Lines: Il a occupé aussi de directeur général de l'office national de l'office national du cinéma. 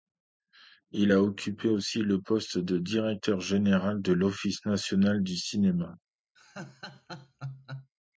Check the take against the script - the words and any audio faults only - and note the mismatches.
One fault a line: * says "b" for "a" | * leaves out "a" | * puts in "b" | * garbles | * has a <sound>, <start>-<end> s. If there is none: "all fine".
* puts in "le poste"
* leaves out "de l'office national"
* has a laugh, 6.4-7.9 s